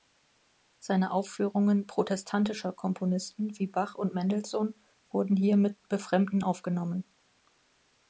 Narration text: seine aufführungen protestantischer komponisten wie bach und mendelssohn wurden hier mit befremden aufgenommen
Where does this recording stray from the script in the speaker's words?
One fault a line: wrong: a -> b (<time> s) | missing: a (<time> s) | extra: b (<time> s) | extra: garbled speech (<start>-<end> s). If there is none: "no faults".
no faults